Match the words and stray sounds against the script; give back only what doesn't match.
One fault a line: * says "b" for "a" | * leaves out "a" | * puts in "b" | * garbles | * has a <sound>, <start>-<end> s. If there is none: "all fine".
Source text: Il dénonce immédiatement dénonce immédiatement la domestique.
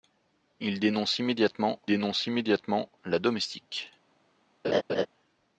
* has a laugh, 4.6-5.1 s